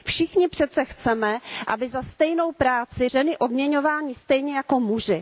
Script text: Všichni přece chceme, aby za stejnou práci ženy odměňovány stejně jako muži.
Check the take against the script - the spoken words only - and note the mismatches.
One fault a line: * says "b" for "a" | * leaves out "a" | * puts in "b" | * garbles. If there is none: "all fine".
all fine